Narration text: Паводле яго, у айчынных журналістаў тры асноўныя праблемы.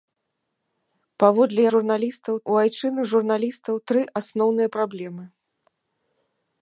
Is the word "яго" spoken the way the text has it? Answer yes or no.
no